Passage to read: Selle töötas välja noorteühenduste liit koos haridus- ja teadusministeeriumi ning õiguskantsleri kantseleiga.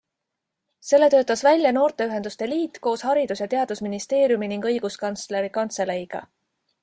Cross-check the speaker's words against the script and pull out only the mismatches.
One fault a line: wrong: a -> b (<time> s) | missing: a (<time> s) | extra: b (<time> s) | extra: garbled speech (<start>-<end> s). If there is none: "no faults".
no faults